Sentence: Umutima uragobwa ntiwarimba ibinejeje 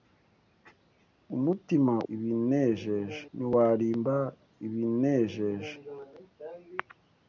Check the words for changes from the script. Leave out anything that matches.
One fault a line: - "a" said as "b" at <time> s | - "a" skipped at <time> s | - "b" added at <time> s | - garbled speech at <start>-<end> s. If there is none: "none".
- "uragobwa" said as "ibinejeje" at 2.1 s